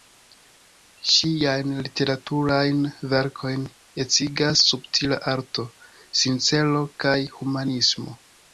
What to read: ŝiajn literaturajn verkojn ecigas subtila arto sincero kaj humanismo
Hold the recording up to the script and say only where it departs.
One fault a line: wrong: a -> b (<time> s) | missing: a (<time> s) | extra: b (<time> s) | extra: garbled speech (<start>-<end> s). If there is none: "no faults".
no faults